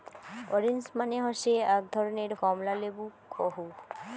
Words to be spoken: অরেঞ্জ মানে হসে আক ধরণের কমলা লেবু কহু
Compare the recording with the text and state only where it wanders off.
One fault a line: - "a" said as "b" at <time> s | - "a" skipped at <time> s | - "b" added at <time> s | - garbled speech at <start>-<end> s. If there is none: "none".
none